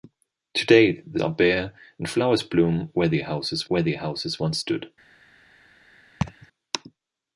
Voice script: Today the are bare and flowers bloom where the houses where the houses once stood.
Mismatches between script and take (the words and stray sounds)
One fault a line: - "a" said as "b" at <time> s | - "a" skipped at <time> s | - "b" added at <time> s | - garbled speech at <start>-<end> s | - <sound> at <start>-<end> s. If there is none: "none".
- laugh at 6.2-6.5 s